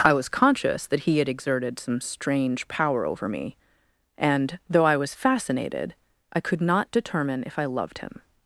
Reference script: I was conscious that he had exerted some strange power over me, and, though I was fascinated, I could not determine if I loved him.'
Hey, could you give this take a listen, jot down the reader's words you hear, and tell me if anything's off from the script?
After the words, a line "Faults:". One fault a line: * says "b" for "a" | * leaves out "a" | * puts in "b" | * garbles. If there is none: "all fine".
I was conscious that he had exerted some strange power over me, and, though I was fascinated, I could not determine if I loved him.'
Faults:
all fine